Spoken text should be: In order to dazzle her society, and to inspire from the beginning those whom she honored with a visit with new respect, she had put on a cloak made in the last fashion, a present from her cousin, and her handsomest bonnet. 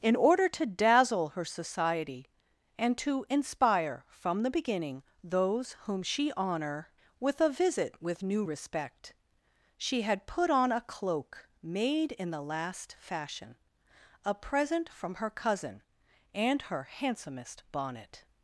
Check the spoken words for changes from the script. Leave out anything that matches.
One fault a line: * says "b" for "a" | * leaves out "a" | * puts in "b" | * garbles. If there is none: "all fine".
* says "honor" for "honored"